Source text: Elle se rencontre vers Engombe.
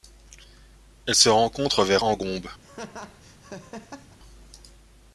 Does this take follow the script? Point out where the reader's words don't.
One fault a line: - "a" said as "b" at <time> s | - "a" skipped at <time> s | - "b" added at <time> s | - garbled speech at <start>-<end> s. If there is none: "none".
none